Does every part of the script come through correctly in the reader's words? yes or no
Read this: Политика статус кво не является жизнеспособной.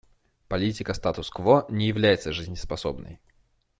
yes